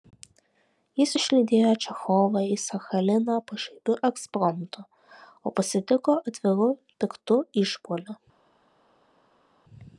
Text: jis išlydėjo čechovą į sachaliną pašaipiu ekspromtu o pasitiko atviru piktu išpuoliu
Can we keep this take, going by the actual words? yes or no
yes